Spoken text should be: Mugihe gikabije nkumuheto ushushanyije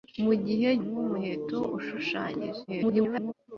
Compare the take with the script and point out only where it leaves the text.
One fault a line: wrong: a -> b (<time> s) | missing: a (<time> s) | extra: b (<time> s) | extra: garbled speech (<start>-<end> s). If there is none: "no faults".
missing: gikabije (0.7 s)
extra: garbled speech (2.7-3.3 s)